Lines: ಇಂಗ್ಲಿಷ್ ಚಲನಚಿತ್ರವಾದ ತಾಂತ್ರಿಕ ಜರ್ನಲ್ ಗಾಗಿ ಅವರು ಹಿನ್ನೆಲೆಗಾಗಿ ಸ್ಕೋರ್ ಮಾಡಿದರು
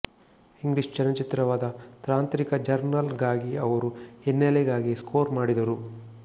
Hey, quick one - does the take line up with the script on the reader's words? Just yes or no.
yes